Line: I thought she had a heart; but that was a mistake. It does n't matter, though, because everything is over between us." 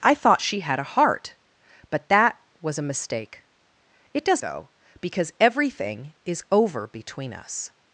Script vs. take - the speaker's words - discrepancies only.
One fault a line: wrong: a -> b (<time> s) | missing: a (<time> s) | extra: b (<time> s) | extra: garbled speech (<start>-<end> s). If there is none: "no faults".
missing: n't matter (4.4 s)